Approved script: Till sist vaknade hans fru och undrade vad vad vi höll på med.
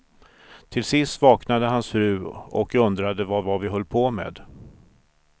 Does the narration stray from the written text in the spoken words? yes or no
no